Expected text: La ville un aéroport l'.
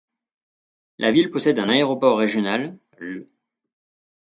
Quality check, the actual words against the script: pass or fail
fail